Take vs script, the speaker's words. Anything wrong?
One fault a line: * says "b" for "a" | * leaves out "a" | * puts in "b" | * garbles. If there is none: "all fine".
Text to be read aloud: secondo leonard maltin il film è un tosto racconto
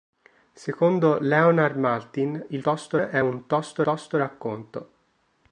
* says "tosto" for "film"
* puts in "tosto"